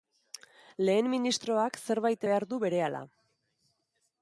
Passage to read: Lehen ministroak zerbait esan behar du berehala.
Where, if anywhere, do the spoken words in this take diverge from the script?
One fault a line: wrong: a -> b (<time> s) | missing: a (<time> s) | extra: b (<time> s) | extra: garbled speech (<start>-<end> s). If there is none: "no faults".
missing: esan (2.3 s)